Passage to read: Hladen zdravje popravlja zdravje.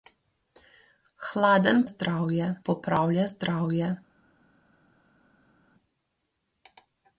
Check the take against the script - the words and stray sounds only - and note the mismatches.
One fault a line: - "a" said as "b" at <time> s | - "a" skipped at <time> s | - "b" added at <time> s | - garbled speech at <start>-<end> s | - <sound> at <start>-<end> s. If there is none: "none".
none